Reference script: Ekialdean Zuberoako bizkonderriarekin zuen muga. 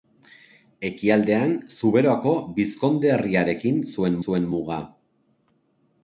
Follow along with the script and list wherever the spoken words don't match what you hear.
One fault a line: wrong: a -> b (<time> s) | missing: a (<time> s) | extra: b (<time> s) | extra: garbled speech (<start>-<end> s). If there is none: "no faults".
extra: zuen (4.2 s)